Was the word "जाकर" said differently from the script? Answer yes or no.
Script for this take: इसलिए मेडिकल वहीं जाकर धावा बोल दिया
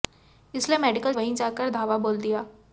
no